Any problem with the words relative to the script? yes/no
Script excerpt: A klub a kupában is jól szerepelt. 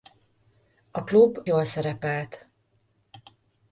yes